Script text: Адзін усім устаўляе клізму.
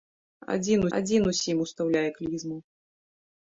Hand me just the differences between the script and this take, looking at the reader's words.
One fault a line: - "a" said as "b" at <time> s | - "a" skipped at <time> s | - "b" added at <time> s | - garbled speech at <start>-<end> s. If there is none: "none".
- "адзін" added at 1.0 s